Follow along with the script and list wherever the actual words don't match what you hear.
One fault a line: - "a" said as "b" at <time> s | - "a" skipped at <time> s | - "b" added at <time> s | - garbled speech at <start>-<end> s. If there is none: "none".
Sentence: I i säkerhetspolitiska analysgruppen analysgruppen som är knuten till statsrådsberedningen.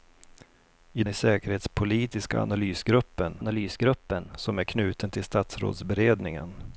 none